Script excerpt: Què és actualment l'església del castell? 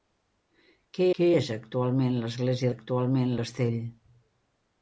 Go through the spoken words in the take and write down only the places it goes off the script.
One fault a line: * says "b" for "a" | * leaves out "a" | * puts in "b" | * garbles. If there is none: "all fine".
* puts in "què"
* says "actualment" for "del"